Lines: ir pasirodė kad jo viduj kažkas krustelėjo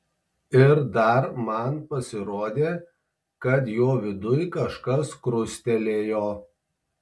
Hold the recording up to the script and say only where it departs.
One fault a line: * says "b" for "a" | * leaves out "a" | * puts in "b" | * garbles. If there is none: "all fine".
* puts in "dar man"